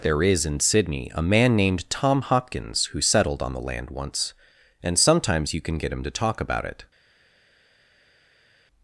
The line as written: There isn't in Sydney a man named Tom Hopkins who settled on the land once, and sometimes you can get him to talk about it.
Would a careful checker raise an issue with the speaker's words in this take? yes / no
yes